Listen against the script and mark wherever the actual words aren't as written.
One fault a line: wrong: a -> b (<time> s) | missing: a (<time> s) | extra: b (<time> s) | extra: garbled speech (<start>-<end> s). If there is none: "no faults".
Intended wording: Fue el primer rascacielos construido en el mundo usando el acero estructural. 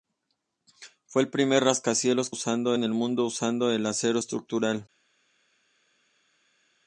wrong: construido -> usando (2.3 s)